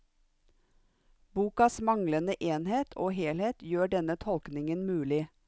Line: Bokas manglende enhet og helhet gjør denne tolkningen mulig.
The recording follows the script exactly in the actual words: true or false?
true